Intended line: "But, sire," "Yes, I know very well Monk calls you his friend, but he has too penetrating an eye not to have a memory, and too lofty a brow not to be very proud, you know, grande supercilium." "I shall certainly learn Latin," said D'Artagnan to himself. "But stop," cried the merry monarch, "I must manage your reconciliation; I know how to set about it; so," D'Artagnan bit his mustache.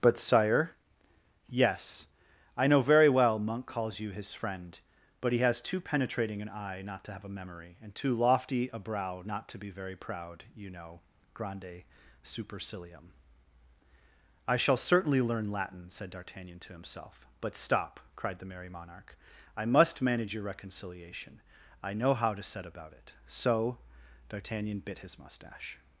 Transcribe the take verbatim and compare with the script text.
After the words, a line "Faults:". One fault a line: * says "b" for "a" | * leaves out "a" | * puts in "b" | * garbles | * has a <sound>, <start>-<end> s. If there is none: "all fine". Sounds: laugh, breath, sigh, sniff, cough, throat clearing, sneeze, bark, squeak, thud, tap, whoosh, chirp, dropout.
"But, sire," "Yes, I know very well Monk calls you his friend, but he has too penetrating an eye not to have a memory, and too lofty a brow not to be very proud, you know, grande supercilium." "I shall certainly learn Latin," said D'Artagnan to himself. "But stop," cried the merry monarch, "I must manage your reconciliation; I know how to set about it; so," D'Artagnan bit his mustache.
Faults:
all fine